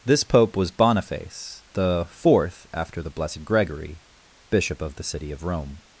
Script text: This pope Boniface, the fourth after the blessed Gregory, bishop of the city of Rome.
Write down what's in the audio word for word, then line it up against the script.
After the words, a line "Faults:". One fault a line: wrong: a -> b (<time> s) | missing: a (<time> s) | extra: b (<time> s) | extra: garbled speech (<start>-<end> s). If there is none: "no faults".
This pope was Boniface, the fourth after the blessed Gregory, bishop of the city of Rome.
Faults:
extra: was (0.6 s)